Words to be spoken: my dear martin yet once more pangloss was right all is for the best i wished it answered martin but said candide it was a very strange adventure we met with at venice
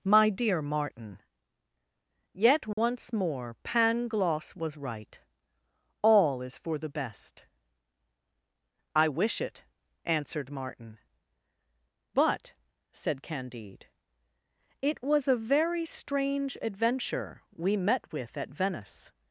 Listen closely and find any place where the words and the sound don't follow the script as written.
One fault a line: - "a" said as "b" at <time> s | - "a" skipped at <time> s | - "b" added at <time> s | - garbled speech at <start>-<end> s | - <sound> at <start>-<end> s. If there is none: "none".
- dropout at 2.7-2.8 s
- "wished" said as "wish" at 9.1 s